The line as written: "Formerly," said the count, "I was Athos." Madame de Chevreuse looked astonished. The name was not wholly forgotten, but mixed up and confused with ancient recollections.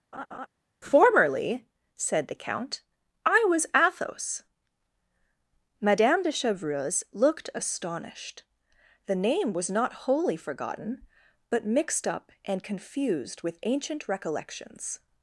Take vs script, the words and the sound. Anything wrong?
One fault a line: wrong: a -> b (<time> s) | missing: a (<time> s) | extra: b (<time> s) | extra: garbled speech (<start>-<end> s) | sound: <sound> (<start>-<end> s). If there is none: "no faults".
sound: laugh (0.1-0.5 s)